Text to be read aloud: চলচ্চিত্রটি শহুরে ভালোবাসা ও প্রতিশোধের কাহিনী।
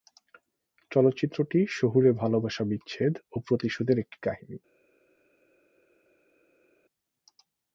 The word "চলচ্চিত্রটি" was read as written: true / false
true